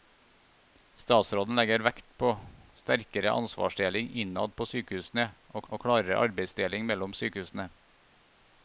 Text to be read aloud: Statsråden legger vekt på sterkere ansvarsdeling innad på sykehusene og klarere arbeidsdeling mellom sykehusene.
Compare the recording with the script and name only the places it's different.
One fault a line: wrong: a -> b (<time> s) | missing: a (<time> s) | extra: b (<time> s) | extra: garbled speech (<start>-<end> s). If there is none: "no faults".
extra: og (5.7 s)